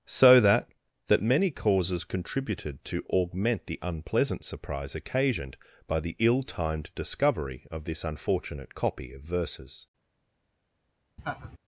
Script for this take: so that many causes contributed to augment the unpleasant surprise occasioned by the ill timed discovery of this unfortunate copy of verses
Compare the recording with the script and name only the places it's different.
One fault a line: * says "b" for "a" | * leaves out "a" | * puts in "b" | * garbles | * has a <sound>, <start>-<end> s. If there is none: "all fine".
* puts in "that"
* has a laugh, 11.2-11.6 s